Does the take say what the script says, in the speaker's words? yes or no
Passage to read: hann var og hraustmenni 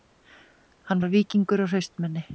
no